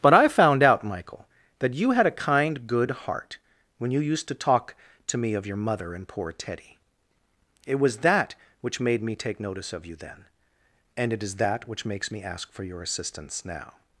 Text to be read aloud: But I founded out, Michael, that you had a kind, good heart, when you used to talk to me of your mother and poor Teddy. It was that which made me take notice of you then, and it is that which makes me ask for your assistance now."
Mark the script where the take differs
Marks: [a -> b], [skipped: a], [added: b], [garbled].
But I [founded -> found] out, Michael, that you had a kind, good heart, when you used to talk to me of your mother and poor Teddy. It was that which made me take notice of you then, and it is that which makes me ask for your assistance now."